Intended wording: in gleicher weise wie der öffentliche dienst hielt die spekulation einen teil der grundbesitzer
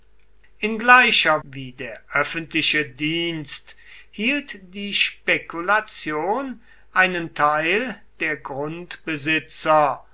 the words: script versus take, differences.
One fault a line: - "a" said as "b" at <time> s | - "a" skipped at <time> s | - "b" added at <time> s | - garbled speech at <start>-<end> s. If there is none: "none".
- "weise" skipped at 1.4 s